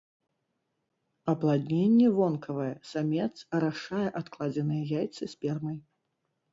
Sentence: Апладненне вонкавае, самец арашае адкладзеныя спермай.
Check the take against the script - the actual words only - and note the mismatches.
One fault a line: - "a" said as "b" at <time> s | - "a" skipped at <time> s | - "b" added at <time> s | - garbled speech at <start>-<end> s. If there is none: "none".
- "яйцы" added at 5.0 s